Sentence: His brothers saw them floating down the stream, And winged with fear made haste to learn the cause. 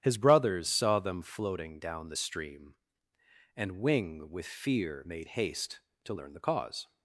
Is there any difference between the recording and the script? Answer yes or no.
yes